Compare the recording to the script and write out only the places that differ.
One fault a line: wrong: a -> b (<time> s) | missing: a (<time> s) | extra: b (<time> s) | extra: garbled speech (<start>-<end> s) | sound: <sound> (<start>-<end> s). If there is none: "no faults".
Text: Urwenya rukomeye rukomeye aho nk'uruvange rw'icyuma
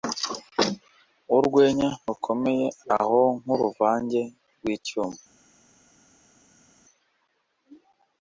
missing: rukomeye (2.7 s)